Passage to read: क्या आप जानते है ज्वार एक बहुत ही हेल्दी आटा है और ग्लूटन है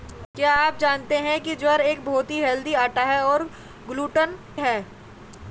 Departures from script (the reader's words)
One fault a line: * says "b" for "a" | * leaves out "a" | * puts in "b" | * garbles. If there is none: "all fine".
all fine